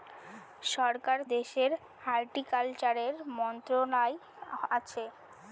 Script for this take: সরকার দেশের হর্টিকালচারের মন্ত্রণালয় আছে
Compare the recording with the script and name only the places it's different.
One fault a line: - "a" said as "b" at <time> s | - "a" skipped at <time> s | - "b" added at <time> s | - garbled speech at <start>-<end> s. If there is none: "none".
none